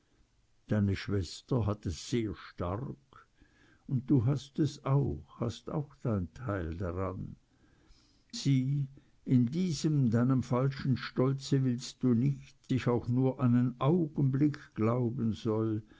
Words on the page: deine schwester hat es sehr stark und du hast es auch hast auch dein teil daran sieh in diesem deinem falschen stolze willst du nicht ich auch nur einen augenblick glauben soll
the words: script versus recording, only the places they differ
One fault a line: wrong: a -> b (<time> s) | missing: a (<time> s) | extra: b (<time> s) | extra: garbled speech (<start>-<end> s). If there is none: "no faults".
no faults